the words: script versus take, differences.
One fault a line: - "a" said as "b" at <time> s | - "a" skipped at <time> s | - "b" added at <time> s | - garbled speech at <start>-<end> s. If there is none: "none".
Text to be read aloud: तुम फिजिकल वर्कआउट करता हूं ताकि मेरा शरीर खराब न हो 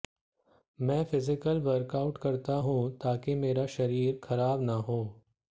- "तुम" said as "मैं" at 0.8 s